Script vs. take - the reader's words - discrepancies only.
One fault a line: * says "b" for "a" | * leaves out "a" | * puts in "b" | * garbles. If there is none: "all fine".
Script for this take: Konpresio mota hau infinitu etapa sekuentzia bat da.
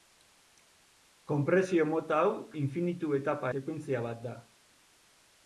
all fine